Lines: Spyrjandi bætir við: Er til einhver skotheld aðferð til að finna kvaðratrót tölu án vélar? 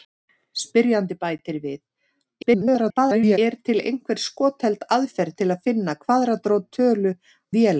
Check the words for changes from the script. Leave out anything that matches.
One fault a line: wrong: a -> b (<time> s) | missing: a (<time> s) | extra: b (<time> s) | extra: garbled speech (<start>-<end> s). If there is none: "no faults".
extra: garbled speech (2.4-3.4 s)
missing: án (7.1 s)